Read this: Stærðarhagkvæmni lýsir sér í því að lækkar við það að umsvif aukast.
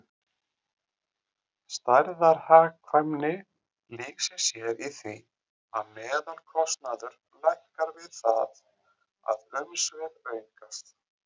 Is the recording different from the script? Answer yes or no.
yes